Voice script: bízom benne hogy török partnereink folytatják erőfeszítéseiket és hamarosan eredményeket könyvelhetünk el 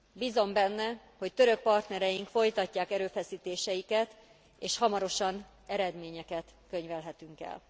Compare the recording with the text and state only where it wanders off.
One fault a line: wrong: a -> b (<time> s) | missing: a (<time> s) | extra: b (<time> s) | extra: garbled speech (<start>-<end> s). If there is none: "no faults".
no faults